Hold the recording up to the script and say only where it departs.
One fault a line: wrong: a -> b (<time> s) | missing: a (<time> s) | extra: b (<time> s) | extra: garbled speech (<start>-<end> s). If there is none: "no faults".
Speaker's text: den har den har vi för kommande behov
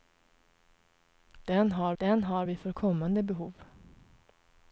no faults